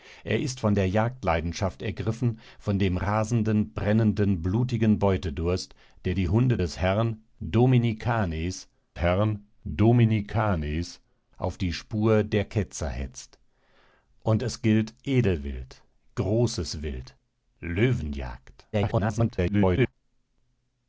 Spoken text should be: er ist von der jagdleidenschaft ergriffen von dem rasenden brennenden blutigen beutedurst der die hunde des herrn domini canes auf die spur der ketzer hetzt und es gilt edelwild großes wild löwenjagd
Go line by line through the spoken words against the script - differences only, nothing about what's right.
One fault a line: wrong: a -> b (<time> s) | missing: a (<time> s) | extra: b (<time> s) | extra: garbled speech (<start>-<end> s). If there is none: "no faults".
extra: herrn domini canes (9.0 s)
extra: garbled speech (18.7-19.9 s)